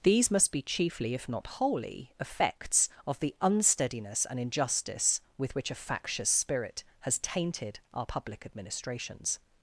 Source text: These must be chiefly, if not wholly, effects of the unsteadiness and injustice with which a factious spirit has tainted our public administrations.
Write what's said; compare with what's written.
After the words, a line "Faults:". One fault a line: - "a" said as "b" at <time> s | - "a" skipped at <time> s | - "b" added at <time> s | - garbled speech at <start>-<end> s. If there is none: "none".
These must be chiefly, if not wholly, effects of the unsteadiness and injustice with which a factious spirit has tainted our public administrations.
Faults:
none